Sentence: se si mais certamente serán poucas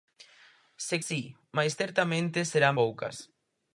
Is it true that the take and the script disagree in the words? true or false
false